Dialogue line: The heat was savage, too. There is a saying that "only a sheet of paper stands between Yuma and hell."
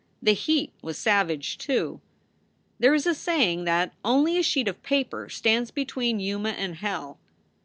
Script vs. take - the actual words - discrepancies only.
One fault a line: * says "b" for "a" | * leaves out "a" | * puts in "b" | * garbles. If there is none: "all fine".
all fine